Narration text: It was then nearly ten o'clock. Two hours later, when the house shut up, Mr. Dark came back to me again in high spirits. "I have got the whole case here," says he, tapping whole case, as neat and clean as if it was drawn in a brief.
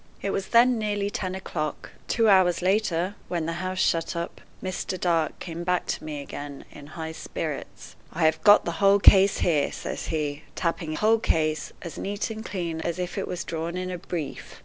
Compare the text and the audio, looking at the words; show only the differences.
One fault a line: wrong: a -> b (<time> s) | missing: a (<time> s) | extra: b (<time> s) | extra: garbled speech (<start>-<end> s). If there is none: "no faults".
no faults